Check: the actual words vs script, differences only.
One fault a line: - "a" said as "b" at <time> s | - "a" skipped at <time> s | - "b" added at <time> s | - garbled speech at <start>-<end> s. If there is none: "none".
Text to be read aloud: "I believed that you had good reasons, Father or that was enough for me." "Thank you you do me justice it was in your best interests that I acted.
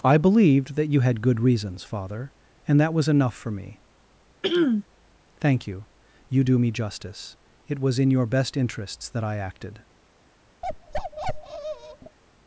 - "or" said as "and" at 2.7 s